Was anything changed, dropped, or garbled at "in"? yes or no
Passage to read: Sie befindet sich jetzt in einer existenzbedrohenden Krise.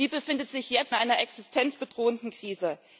yes